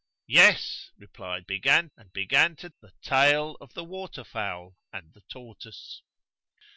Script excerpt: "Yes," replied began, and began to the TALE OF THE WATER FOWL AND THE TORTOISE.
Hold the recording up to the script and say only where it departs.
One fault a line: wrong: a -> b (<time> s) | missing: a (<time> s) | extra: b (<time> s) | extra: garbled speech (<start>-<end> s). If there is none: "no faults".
no faults